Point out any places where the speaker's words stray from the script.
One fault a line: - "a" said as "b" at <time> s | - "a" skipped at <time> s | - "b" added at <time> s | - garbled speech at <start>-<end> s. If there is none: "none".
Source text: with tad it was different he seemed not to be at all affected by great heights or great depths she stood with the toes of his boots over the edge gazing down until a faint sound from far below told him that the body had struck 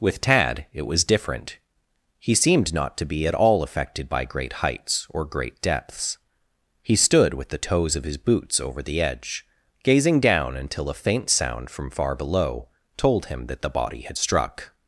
- "she" said as "he" at 6.8 s